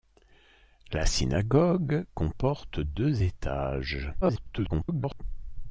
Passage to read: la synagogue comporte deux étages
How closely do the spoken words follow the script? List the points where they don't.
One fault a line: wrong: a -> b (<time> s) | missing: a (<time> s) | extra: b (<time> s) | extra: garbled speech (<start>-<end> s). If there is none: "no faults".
extra: garbled speech (4.2-5.2 s)